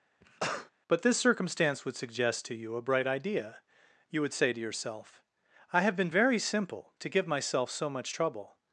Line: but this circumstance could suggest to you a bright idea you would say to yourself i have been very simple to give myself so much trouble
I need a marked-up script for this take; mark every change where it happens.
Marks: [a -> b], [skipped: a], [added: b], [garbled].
but this circumstance [could -> would] suggest to you a bright idea you would say to yourself i have been very simple to give myself so much trouble